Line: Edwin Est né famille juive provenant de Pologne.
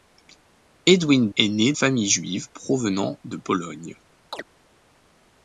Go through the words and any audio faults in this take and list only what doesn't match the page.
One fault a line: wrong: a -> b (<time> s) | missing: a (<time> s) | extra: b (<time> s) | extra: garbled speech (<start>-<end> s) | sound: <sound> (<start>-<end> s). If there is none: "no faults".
sound: chirp (4.3-4.4 s)